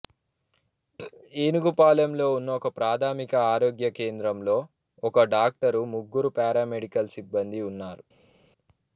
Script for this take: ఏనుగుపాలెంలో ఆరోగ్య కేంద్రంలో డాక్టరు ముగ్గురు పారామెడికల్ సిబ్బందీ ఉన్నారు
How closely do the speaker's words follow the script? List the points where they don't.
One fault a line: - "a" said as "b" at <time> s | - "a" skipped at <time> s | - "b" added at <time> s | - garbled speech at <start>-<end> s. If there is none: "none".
- "ఉన్న ఒకప్రాథమిక" added at 2.4 s
- "ఒక" added at 5.0 s